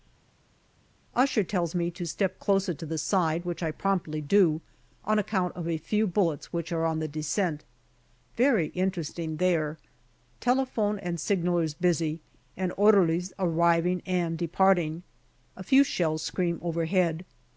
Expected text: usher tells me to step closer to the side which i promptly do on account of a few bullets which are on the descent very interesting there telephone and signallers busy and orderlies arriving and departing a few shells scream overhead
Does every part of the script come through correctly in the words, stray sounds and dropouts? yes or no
yes